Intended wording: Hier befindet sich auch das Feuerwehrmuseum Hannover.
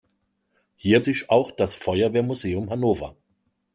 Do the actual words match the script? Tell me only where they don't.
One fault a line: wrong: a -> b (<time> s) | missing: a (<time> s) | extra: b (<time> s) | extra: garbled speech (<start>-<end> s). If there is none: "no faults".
missing: befindet (1.1 s)